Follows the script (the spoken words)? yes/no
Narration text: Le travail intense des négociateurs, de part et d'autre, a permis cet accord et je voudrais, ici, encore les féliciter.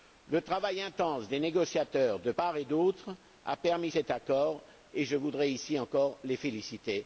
yes